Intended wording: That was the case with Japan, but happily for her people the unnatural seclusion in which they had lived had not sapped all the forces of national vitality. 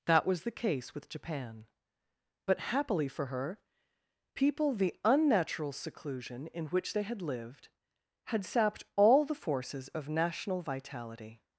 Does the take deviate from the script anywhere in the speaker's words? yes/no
yes